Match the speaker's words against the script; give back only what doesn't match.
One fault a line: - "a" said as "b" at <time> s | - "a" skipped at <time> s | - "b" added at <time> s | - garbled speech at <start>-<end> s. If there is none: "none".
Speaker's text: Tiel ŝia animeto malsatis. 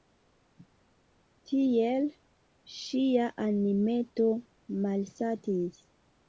none